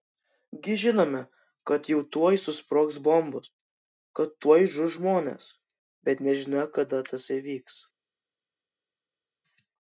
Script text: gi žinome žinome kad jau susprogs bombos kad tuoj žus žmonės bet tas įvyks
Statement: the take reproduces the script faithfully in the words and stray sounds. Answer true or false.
false